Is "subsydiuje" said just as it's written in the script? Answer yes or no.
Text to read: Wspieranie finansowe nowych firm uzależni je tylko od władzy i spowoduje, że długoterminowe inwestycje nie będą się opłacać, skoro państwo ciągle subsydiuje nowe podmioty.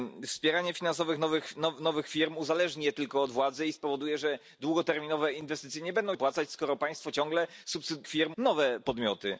no